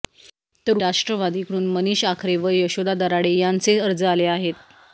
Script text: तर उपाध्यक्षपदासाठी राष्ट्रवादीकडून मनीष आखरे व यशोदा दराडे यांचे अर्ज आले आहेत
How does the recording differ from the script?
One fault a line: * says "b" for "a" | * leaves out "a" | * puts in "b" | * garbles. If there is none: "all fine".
* leaves out "उपाध्यक्षपदासाठी"